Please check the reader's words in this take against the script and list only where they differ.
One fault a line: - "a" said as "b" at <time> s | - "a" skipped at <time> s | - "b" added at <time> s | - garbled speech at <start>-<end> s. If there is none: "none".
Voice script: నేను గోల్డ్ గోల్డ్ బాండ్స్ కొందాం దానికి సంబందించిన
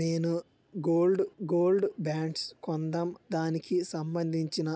none